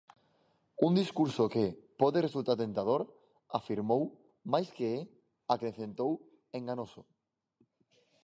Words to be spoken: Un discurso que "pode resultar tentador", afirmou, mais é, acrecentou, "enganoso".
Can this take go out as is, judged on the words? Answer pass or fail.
fail